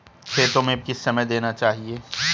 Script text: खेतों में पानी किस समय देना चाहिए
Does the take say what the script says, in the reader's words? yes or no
no